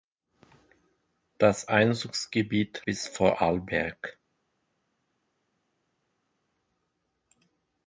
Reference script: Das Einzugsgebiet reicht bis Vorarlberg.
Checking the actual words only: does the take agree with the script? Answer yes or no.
no